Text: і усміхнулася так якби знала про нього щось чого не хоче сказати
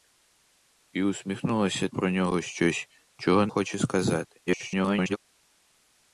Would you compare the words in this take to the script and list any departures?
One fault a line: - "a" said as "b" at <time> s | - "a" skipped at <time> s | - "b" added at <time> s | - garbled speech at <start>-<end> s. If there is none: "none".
- "так якби знала" skipped at 1.9 s
- "не" skipped at 3.5 s
- garbled speech at 4.5-5.2 s